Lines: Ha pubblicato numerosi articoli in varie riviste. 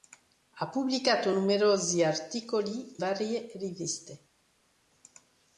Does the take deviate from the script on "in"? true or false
true